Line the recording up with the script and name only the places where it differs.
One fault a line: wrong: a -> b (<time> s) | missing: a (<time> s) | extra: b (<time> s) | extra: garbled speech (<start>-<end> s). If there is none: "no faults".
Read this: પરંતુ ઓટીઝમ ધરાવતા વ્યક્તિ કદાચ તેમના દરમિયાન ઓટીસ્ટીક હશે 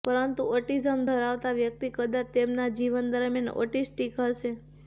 extra: જીવન (2.8 s)